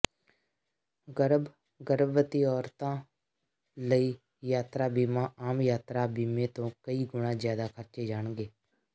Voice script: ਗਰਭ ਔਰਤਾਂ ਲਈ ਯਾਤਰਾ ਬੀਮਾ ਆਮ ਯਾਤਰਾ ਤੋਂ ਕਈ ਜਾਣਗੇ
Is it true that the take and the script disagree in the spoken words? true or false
true